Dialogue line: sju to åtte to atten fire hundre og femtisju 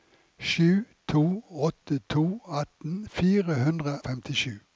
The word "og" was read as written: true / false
false